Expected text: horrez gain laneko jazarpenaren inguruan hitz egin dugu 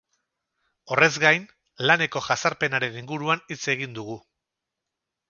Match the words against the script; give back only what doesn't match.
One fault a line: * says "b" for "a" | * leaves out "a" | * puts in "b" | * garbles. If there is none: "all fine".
all fine